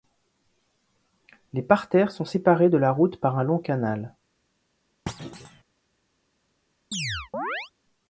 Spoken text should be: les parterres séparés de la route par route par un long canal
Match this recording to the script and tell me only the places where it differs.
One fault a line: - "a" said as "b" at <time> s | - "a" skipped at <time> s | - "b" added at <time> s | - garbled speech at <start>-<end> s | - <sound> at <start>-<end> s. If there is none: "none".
- "sont" added at 2.1 s
- "route par" skipped at 3.4 s
- thud at 5.1-5.6 s
- chirp at 6.9-7.7 s